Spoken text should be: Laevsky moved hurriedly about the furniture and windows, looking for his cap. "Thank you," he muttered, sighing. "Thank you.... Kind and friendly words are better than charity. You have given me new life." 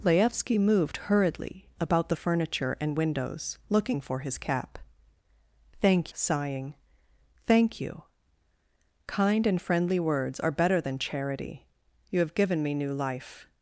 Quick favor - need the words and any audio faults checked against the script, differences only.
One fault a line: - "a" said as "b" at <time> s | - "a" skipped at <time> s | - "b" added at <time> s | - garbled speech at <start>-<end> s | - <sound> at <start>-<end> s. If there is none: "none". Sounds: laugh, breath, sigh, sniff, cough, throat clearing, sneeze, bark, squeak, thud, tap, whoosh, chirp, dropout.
- "you he muttered" skipped at 6.1 s